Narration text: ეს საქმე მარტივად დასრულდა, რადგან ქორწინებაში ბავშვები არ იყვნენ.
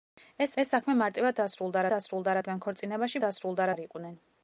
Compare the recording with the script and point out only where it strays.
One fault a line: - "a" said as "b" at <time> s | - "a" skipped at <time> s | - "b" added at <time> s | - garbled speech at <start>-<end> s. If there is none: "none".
- "ეს" added at 0.6 s
- "დასრულდა" added at 1.9 s
- "ბავშვები" said as "დასრულდა" at 3.2 s